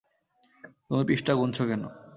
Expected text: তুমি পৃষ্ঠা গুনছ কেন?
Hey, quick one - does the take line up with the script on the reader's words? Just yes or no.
yes